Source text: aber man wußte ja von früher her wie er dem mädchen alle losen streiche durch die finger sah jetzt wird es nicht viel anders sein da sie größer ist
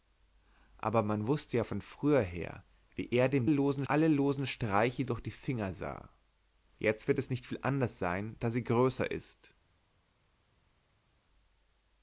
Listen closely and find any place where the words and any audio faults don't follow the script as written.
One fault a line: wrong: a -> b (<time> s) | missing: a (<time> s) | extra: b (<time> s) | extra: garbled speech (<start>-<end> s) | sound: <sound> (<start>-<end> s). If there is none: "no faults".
wrong: mädchen -> losen (3.5 s)